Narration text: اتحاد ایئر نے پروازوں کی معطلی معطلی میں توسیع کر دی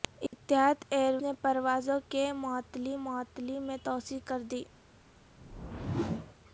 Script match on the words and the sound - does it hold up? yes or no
no